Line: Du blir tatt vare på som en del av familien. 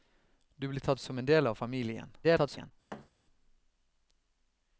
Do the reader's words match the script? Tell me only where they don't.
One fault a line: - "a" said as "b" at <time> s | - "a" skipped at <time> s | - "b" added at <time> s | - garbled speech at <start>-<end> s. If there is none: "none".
- "vare på" skipped at 1.0 s
- garbled speech at 2.2-2.7 s